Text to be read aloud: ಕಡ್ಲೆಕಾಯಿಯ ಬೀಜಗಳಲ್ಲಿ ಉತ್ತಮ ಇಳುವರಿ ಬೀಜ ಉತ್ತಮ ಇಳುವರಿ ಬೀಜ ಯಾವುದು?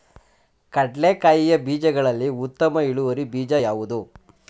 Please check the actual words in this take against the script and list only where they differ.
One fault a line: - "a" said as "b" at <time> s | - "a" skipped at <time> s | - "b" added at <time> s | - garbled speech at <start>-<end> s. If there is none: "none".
- "ಉತ್ತಮ ಇಳುವರಿ ಬೀಜ" skipped at 3.5 s